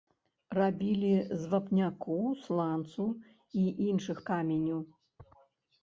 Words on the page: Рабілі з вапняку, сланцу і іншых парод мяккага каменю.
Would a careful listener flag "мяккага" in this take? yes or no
yes